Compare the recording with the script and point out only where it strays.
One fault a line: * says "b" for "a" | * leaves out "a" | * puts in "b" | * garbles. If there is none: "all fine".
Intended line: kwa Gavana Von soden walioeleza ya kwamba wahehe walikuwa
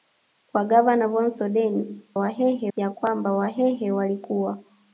* says "wahehe" for "walioeleza"